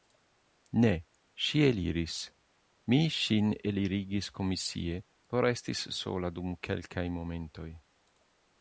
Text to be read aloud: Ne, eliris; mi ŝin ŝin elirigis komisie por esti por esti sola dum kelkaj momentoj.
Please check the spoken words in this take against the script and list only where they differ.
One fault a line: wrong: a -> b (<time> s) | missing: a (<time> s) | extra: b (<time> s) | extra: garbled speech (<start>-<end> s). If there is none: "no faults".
extra: ŝi (1.5 s)
missing: ŝin (3.5 s)
missing: por esti (5.8 s)